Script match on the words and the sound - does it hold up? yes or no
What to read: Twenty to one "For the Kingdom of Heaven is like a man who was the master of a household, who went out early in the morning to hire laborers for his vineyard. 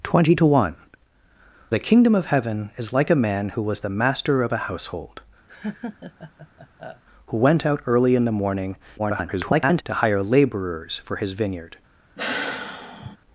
no